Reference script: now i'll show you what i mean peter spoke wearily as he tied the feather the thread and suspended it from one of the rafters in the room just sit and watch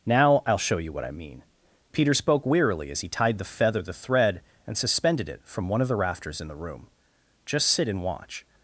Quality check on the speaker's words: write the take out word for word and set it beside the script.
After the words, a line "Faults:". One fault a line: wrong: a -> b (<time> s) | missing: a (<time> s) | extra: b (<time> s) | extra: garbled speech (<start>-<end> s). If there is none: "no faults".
now i'll show you what i mean peter spoke wearily as he tied the feather the thread and suspended it from one of the rafters in the room just sit and watch
Faults:
no faults